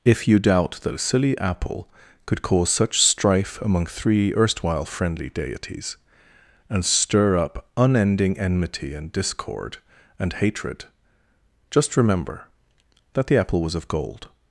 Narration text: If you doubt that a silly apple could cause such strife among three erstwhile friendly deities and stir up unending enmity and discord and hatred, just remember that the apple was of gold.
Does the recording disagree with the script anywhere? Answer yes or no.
no